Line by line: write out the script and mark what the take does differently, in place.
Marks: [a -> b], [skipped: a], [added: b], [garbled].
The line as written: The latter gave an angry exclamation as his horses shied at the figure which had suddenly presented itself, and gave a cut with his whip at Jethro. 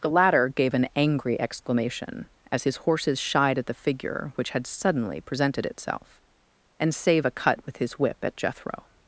The latter gave an angry exclamation as his horses shied at the figure which had suddenly presented itself, and [gave -> save] a cut with his whip at Jethro.